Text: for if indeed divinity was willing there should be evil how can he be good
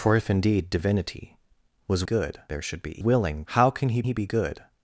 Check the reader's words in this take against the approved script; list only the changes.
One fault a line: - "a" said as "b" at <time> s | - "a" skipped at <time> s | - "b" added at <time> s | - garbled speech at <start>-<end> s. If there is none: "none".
- "willing" said as "good" at 2.0 s
- "evil" said as "willing" at 3.0 s
- "he" added at 4.0 s